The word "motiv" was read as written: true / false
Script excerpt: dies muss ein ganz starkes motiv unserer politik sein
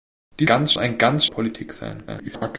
false